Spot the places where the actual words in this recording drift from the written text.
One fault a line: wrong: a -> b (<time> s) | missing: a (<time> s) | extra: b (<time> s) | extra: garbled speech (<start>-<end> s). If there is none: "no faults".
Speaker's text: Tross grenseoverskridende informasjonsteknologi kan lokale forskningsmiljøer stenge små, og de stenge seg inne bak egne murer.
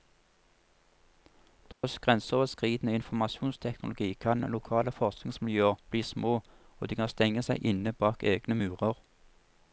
wrong: stenge -> bli (5.9 s)
extra: kan (7.0 s)